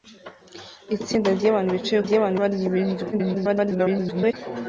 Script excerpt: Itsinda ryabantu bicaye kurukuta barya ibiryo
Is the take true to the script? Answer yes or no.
no